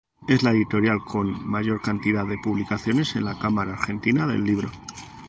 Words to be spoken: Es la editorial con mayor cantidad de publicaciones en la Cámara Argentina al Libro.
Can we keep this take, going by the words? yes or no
no